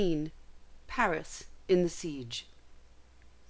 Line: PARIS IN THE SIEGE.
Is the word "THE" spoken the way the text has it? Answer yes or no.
yes